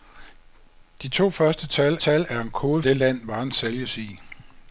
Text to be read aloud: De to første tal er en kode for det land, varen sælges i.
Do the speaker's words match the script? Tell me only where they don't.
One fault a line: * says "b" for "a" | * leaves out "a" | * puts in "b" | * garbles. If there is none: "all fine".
* puts in "tal"
* leaves out "for"